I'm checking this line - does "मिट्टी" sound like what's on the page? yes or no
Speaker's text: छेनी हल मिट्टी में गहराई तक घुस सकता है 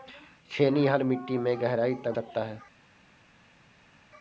yes